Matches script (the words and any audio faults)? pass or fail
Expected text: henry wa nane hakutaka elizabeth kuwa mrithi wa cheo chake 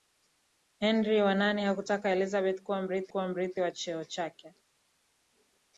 fail